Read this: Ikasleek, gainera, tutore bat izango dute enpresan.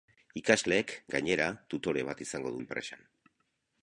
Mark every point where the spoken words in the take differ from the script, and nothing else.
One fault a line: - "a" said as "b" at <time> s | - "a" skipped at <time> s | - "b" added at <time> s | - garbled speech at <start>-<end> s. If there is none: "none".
- "dute" skipped at 2.6 s